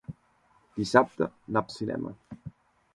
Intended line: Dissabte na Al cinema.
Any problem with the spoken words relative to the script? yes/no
no